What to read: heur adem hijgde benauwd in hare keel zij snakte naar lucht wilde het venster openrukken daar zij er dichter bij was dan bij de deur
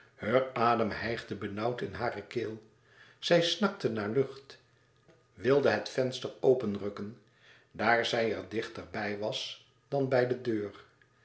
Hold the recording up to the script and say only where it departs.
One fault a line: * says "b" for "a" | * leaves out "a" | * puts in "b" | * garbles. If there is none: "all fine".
all fine